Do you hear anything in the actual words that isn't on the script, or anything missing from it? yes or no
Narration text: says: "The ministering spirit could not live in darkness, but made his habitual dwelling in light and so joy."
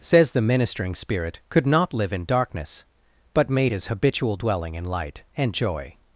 yes